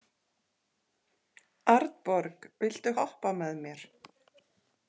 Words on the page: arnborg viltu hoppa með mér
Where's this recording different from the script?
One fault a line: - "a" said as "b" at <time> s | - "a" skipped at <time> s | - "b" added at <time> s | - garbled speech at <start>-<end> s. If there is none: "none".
none